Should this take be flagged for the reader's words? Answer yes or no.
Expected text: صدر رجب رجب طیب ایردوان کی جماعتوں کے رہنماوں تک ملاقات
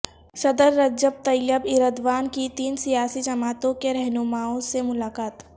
yes